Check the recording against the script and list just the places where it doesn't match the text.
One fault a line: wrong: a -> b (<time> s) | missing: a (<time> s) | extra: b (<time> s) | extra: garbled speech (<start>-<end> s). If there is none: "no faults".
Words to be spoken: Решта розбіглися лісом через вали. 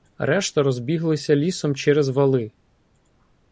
no faults